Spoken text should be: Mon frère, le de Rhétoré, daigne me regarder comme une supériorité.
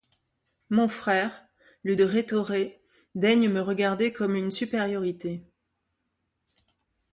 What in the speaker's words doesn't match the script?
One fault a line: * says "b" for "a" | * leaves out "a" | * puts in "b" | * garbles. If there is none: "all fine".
all fine